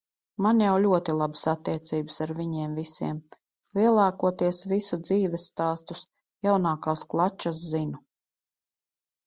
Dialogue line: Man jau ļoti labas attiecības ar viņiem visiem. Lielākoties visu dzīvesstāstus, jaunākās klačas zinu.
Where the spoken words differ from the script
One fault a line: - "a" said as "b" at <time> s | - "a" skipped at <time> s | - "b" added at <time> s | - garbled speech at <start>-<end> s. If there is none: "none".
none